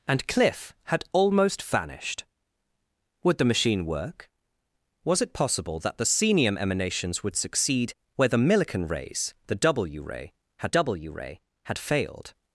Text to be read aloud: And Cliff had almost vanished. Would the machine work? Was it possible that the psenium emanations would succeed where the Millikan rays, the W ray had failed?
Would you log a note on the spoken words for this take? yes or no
yes